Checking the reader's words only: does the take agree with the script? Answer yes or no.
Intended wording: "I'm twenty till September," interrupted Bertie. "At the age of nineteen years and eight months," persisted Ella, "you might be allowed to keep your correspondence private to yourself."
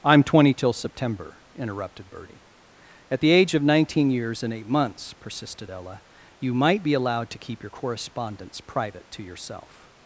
yes